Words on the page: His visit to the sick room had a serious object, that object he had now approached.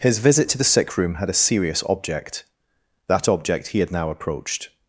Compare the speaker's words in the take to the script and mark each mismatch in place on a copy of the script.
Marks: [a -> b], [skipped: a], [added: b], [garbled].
His visit to the sick room had a serious object, that object he had now approached.